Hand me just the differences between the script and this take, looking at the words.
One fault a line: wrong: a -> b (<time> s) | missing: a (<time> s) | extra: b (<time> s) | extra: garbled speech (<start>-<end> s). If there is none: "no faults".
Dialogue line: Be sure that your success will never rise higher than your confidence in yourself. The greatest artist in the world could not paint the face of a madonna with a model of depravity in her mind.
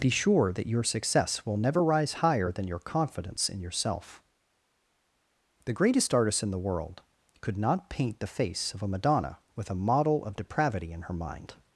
no faults